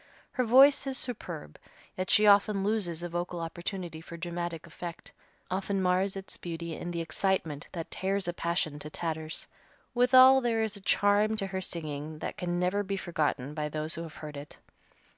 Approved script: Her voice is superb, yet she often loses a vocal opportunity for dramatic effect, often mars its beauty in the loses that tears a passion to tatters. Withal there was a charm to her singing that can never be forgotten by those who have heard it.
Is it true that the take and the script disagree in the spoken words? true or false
true